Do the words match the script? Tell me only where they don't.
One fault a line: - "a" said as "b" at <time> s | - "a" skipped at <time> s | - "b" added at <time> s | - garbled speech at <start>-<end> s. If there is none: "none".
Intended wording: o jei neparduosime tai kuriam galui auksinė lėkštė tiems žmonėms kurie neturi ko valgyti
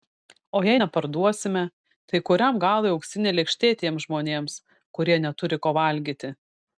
none